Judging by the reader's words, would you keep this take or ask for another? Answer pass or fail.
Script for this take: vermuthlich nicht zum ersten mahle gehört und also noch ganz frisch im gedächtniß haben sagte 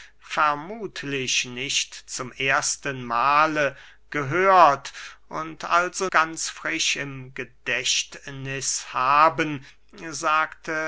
fail